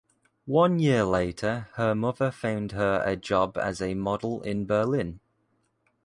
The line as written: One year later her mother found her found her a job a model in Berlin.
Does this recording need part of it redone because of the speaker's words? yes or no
yes